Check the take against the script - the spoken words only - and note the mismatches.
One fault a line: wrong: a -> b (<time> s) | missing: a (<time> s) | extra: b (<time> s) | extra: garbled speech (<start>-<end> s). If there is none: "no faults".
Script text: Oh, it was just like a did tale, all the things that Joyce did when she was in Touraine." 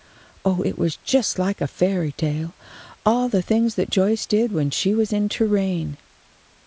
wrong: did -> fairy (1.7 s)